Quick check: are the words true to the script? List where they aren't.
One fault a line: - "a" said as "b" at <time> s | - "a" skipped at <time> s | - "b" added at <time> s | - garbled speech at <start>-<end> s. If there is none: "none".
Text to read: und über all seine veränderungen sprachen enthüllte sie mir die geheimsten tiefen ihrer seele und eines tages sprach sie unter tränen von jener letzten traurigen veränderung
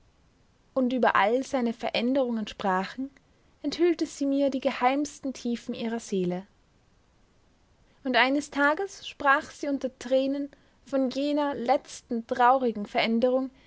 none